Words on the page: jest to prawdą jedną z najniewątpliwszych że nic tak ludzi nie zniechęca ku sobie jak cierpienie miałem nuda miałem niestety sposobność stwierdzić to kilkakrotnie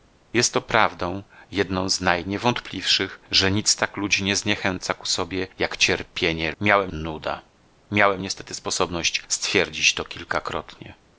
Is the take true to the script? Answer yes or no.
yes